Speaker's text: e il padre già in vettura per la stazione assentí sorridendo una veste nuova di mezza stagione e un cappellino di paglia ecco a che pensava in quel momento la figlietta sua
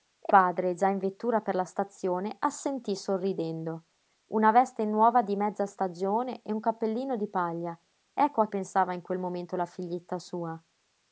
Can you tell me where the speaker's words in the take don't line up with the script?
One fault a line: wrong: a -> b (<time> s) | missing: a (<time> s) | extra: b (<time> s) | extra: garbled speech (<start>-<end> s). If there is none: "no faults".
missing: il (0.3 s)
missing: che (8.5 s)